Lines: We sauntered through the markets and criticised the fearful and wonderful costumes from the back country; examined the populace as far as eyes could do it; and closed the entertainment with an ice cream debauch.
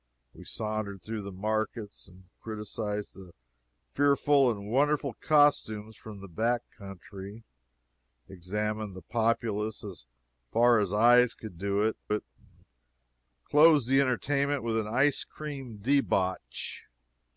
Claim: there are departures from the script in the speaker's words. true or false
true